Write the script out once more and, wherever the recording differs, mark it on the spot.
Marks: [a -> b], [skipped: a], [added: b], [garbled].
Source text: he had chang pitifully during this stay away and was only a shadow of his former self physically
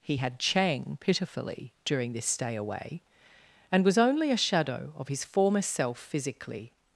he had chang pitifully during this stay away and was only a shadow of his former self physically